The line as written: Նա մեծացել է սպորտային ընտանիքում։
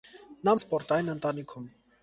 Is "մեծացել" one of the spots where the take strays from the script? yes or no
yes